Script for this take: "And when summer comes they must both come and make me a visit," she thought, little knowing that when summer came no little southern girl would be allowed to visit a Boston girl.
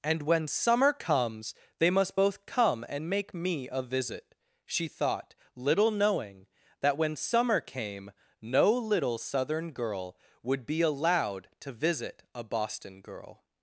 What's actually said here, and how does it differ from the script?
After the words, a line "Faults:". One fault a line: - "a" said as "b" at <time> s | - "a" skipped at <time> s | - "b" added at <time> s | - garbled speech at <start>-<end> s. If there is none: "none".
"And when summer comes they must both come and make me a visit," she thought, little knowing that when summer came no little southern girl would be allowed to visit a Boston girl.
Faults:
none